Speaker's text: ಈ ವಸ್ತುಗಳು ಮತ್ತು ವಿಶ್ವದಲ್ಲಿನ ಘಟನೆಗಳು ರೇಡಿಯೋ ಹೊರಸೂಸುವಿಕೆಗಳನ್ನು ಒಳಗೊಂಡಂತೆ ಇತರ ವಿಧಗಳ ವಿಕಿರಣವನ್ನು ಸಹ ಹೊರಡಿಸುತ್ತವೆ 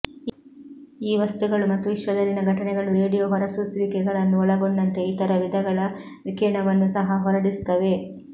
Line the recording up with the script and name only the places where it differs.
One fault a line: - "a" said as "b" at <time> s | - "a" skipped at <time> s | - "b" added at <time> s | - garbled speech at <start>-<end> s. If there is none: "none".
none